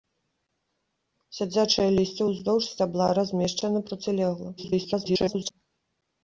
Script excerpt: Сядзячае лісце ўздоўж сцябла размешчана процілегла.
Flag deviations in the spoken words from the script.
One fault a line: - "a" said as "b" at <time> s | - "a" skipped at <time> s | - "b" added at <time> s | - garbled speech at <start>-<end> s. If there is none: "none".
- garbled speech at 4.6-5.5 s